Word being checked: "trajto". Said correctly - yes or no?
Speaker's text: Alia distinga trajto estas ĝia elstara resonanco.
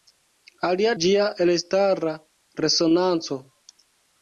no